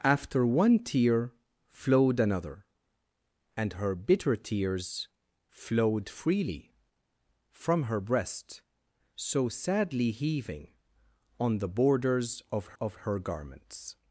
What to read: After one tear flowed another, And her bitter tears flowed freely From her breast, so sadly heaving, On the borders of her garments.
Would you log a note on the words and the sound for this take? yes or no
yes